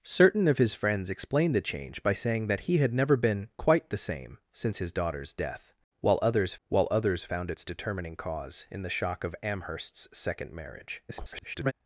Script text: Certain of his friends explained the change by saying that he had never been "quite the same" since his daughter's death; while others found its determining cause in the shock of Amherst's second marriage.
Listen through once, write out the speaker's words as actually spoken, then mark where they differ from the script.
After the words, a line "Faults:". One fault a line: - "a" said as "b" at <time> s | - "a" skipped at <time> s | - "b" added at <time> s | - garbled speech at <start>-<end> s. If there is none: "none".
Certain of his friends explained the change by saying that he had never been "quite the same" since his daughter's death; while others while others found its determining cause in the shock of Amherst's second marriage. [garbled]
Faults:
- "while others" added at 6.7 s
- garbled speech at 11.1-11.7 s